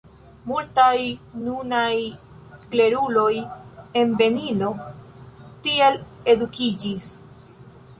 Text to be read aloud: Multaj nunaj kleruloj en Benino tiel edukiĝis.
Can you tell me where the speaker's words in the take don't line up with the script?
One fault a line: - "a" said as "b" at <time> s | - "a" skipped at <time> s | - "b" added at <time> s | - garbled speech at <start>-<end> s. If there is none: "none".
none